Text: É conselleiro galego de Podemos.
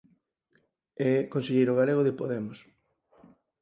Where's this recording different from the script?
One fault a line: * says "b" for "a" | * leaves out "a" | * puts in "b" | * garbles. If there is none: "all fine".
all fine